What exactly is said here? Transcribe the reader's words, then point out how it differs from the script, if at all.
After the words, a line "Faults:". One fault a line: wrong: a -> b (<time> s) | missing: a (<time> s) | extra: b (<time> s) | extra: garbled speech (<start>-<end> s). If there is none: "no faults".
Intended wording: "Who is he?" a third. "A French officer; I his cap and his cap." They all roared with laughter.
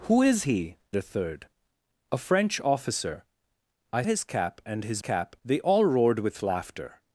"Who is he?" a third. "A French officer; I his cap and his cap." They all roared with laughter.
Faults:
no faults